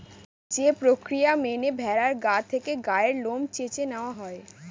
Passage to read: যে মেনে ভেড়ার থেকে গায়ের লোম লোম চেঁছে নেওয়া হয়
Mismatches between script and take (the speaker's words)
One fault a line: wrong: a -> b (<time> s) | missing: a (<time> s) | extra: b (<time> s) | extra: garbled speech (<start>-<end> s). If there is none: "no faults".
extra: প্রক্রিয়া (0.8 s)
extra: গা (2.2 s)
missing: লোম (3.4 s)